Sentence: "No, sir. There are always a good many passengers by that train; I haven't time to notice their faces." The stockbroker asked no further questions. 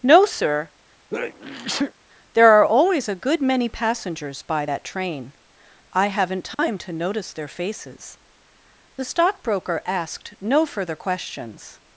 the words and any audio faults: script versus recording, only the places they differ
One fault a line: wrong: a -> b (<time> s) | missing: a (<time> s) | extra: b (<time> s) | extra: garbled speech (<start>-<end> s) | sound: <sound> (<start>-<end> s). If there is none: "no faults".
sound: sneeze (1.1-1.9 s)
sound: dropout (6.5-6.6 s)